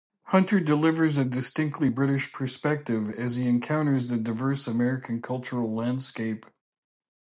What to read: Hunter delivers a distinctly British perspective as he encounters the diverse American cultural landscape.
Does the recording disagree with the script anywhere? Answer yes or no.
no